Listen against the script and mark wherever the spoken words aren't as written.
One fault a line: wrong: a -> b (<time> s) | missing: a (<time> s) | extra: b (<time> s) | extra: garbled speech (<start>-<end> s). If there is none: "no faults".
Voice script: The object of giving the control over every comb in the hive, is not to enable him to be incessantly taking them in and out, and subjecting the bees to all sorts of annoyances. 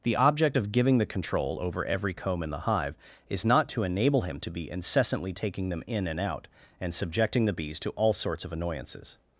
no faults